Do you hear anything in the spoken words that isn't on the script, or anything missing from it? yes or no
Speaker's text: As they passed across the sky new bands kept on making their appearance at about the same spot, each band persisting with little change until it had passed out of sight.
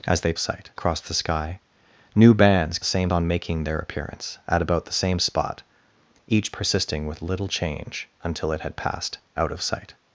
yes